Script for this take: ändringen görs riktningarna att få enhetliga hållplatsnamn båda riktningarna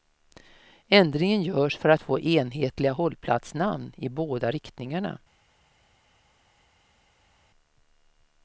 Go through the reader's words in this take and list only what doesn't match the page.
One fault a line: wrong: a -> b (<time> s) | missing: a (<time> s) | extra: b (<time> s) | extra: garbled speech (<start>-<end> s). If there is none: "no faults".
wrong: riktningarna -> för (1.8 s)
extra: i (4.0 s)